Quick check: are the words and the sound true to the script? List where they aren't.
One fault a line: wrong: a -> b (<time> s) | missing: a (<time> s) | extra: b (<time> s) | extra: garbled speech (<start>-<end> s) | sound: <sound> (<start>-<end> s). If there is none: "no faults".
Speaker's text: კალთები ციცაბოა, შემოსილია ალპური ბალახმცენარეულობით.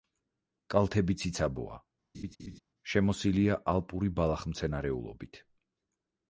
sound: laugh (2.1-2.6 s)